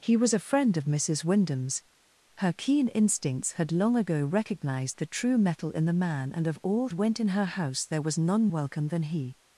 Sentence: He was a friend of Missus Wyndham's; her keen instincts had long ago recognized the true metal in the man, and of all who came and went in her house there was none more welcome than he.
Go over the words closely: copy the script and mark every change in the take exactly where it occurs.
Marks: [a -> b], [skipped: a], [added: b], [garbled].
He was a friend of Missus Wyndham's; her keen instincts had long ago recognized the true metal in the man, and of all [skipped: who came and] went in her house there was none [skipped: more] welcome than he.